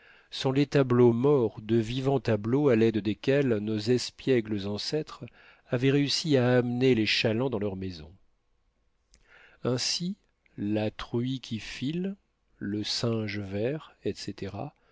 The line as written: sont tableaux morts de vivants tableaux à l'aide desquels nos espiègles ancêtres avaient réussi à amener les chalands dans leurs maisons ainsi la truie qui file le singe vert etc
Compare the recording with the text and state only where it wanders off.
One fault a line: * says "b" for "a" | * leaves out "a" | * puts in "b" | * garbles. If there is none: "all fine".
* puts in "les"